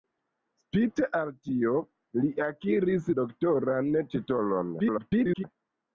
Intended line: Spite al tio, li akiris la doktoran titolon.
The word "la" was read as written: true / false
false